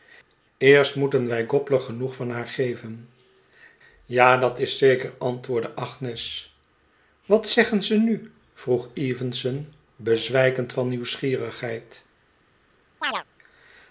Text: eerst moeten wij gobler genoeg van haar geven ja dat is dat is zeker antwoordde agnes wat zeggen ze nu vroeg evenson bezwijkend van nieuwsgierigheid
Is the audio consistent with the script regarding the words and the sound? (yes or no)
no